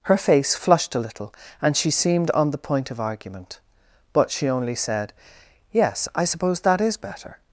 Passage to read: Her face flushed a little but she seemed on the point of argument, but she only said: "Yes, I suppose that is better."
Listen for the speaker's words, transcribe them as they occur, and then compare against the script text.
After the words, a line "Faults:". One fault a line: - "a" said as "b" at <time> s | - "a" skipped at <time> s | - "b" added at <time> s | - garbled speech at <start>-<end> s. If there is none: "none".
Her face flushed a little and she seemed on the point of argument, but she only said: "Yes, I suppose that is better."
Faults:
- "but" said as "and" at 1.6 s